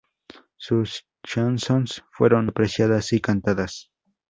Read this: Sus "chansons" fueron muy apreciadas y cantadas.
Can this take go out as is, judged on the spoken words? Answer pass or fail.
fail